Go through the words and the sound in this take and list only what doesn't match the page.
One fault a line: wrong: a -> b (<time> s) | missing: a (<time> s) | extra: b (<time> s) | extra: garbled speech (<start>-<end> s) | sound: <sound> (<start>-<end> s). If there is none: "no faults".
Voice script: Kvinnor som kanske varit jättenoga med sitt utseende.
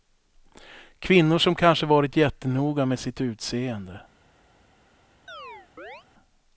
sound: chirp (5.3-6.1 s)